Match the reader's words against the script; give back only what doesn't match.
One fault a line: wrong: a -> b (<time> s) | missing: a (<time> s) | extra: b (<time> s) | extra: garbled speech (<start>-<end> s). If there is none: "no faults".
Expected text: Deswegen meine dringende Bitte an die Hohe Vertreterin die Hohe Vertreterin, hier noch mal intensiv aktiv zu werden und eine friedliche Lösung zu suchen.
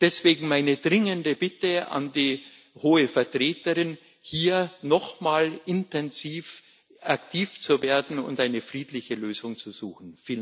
missing: die Hohe Vertreterin (4.0 s)